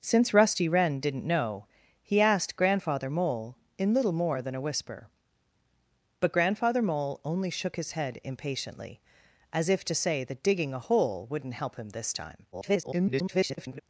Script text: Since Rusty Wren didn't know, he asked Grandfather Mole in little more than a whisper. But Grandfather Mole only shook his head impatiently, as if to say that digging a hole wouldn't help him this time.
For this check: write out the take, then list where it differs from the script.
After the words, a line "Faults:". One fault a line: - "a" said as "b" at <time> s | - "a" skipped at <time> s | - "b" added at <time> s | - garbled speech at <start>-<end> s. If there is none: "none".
Since Rusty Wren didn't know, he asked Grandfather Mole in little more than a whisper. But Grandfather Mole only shook his head impatiently, as if to say that digging a hole wouldn't help him this time. [garbled]
Faults:
- garbled speech at 12.5-13.8 s